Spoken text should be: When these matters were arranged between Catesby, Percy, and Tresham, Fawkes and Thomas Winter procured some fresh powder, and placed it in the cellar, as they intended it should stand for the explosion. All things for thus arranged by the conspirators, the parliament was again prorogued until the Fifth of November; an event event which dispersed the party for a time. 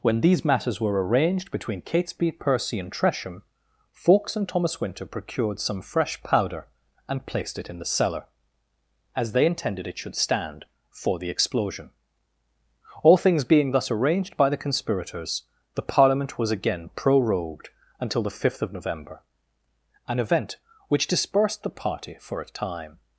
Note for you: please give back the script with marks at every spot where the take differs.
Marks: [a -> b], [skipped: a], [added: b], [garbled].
When these matters were arranged between Catesby, Percy, and Tresham, Fawkes and Thomas Winter procured some fresh powder, and placed it in the cellar, as they intended it should stand for the explosion. All things [for -> being] thus arranged by the conspirators, the parliament was again prorogued until the Fifth of November; an event [skipped: event] which dispersed the party for a time.